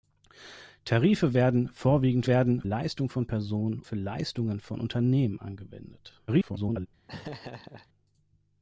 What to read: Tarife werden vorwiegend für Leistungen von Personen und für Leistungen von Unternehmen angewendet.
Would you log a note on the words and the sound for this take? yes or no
yes